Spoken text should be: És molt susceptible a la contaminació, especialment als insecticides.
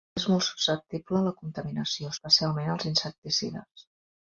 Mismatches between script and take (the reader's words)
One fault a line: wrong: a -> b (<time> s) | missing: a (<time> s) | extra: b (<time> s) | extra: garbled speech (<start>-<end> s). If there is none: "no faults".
no faults